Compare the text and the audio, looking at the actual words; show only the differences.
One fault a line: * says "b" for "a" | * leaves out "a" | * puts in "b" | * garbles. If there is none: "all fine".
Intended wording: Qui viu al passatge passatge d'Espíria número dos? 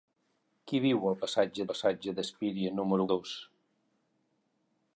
all fine